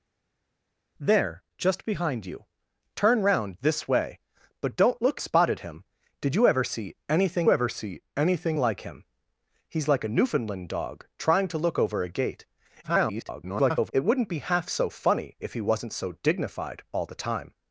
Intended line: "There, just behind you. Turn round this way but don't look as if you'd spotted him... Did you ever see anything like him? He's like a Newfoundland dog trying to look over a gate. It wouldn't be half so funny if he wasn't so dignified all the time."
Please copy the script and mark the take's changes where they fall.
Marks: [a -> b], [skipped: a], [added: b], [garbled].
"There, just behind you. Turn round this way but don't look [skipped: as if you'd] spotted him... Did you ever see anything [added: ever see anything] like him? He's like a Newfoundland dog trying to look over a gate. [garbled] It wouldn't be half so funny if he wasn't so dignified all the time."